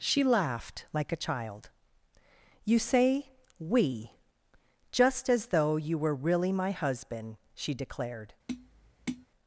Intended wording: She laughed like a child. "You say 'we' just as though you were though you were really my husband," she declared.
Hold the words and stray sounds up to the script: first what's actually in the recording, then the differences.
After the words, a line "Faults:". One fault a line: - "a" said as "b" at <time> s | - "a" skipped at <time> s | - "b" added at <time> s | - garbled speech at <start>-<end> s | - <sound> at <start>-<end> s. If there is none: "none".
She laughed like a child. "You say 'we' just as though you were really my husband," she declared.
Faults:
- "though you were" skipped at 6.2 s
- tap at 8.5-9.3 s